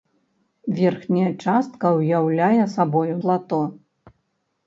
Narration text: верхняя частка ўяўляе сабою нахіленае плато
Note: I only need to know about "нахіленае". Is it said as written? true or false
false